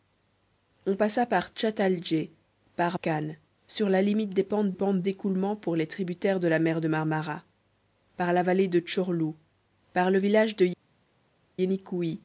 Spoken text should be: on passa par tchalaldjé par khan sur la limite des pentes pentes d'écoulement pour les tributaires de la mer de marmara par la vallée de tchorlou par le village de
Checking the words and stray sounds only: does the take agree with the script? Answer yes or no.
yes